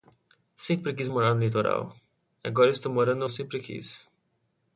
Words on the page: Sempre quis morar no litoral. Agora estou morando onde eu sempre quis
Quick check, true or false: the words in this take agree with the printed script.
false